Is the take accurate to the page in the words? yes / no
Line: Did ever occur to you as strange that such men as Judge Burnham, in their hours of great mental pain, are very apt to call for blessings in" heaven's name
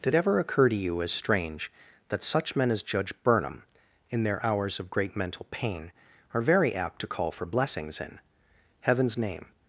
yes